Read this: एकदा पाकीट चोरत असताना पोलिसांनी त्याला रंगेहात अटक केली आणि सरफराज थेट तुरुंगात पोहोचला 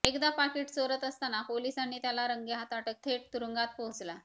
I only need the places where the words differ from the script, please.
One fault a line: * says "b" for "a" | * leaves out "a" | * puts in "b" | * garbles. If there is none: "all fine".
* leaves out "केली आणि सरफराज"